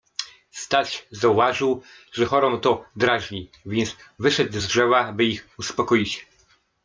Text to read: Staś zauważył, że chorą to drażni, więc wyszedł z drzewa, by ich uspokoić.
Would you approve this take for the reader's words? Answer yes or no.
yes